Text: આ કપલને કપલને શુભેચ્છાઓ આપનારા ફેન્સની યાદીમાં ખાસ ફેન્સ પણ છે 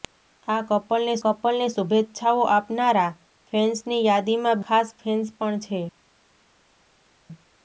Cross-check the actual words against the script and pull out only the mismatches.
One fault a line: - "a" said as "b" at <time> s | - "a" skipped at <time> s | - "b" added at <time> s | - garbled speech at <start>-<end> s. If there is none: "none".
none